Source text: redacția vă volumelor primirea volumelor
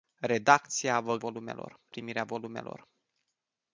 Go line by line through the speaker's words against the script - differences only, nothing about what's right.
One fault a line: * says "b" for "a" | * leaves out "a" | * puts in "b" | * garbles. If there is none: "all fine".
all fine